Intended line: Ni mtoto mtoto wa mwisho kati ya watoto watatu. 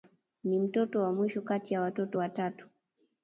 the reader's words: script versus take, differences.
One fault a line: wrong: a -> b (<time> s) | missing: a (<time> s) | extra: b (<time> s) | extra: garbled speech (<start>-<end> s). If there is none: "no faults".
missing: mtoto (1.0 s)